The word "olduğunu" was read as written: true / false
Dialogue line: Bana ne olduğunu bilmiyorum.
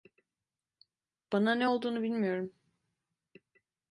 true